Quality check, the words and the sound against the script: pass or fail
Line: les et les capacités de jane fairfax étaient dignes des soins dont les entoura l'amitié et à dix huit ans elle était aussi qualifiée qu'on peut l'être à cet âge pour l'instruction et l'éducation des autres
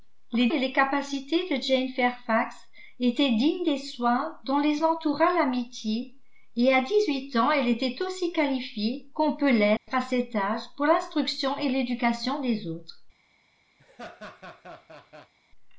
fail